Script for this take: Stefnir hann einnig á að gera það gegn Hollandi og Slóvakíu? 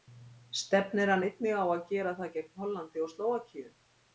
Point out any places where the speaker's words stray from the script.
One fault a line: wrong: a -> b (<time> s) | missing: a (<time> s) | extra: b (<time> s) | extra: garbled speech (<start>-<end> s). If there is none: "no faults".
no faults